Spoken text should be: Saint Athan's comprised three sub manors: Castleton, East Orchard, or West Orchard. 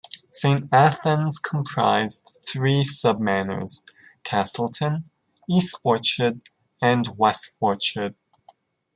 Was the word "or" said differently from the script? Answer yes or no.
yes